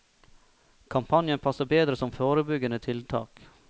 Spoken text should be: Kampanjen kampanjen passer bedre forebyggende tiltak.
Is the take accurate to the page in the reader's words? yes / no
no